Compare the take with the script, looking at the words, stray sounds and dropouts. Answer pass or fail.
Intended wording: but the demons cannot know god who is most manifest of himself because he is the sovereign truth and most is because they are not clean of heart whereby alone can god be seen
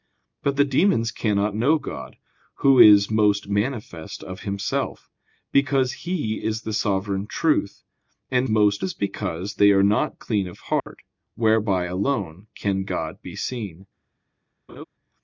fail